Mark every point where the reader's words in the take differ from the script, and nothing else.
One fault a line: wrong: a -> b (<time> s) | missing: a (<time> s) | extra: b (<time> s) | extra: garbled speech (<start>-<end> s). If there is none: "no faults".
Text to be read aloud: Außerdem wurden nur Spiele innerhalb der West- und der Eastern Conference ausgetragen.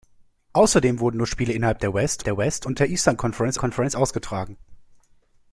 extra: der West (2.2 s)
extra: Conference (3.6 s)